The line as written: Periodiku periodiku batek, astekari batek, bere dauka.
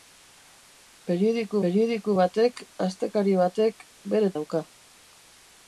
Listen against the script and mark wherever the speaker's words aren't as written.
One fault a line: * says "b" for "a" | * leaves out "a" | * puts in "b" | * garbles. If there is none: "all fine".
all fine